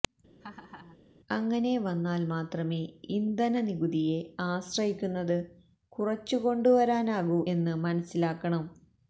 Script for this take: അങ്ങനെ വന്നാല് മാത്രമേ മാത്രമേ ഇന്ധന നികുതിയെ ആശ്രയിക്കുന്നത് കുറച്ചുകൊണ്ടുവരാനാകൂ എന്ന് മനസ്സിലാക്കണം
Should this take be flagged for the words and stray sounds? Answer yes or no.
yes